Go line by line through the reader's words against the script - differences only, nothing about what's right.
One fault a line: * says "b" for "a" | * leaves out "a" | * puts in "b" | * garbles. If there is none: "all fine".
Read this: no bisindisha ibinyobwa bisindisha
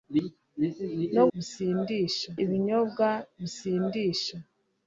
all fine